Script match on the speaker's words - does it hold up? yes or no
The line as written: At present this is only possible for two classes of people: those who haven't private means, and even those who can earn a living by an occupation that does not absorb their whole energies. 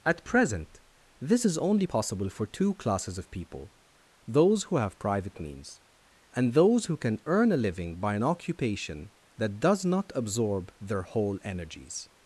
no